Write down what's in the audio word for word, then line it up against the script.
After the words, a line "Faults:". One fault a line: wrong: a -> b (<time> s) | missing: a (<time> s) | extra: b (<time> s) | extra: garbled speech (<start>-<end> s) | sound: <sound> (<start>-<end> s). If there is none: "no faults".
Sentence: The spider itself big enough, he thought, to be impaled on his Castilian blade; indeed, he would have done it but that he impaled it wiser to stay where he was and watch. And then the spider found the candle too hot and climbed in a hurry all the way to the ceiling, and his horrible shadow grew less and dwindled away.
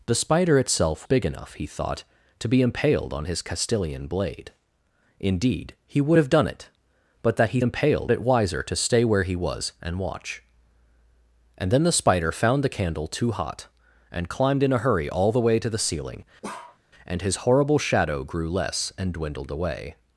The spider itself big enough, he thought, to be impaled on his Castilian blade; indeed, he would have done it but that he impaled it wiser to stay where he was and watch. And then the spider found the candle too hot and climbed in a hurry all the way to the ceiling, and his horrible shadow grew less and dwindled away.
Faults:
sound: bark (16.4-16.8 s)